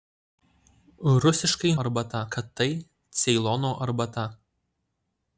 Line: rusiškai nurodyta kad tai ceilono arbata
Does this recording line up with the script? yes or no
no